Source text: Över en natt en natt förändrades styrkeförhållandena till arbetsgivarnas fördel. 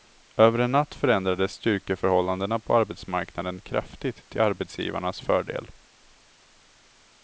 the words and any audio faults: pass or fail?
fail